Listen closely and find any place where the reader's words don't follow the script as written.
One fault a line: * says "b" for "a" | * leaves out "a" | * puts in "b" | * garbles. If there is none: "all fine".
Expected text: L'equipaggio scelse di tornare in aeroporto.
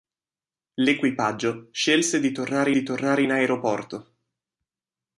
* puts in "di tornare"